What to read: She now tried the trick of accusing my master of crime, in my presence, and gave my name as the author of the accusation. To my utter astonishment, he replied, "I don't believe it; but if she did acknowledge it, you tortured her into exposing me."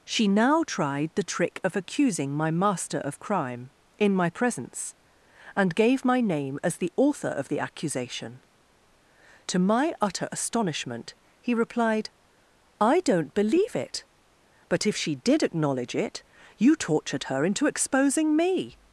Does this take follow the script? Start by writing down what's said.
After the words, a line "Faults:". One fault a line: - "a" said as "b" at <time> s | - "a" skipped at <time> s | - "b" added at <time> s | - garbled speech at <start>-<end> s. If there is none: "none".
She now tried the trick of accusing my master of crime, in my presence, and gave my name as the author of the accusation. To my utter astonishment, he replied, "I don't believe it; but if she did acknowledge it, you tortured her into exposing me."
Faults:
none